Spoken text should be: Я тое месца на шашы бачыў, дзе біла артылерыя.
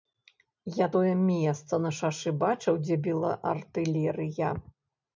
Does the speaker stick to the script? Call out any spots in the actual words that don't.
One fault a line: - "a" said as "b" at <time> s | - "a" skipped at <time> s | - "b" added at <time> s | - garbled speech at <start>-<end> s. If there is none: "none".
none